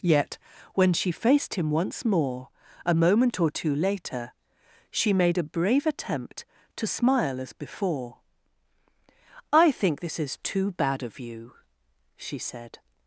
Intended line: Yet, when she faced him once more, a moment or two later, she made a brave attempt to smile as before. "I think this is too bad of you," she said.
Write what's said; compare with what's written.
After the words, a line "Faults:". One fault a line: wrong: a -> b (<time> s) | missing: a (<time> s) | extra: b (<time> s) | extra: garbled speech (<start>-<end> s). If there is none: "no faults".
Yet, when she faced him once more, a moment or two later, she made a brave attempt to smile as before. "I think this is too bad of you," she said.
Faults:
no faults